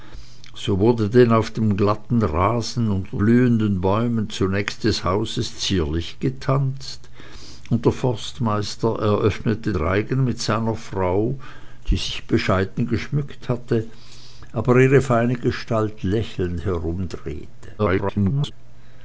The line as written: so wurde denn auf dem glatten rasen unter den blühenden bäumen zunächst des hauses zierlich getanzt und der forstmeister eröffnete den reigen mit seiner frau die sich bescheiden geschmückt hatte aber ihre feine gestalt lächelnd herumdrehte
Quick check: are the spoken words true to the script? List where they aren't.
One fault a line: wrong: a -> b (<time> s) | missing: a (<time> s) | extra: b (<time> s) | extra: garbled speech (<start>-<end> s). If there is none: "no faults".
missing: den (3.2 s)
missing: den (9.7 s)
extra: garbled speech (17.8-18.5 s)